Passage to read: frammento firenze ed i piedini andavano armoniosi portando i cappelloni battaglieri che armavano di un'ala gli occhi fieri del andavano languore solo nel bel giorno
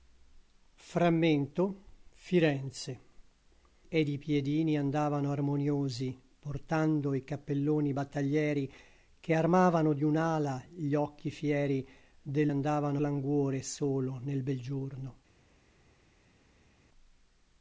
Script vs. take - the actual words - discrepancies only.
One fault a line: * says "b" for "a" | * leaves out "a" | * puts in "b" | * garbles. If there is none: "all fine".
all fine